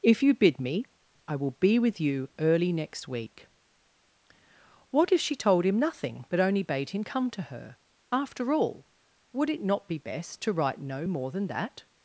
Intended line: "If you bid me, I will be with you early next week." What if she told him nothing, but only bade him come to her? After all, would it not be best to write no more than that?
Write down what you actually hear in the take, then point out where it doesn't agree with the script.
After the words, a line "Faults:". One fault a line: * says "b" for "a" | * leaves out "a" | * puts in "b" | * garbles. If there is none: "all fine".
"If you bid me, I will be with you early next week." What if she told him nothing, but only bade him come to her? After all, would it not be best to write no more than that?
Faults:
all fine